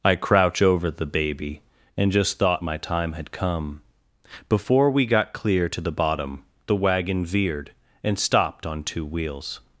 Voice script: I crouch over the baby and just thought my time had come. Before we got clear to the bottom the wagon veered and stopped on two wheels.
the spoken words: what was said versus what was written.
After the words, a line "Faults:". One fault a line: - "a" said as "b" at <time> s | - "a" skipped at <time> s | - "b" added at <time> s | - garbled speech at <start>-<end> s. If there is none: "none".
I crouch over the baby and just thought my time had come. Before we got clear to the bottom the wagon veered and stopped on two wheels.
Faults:
none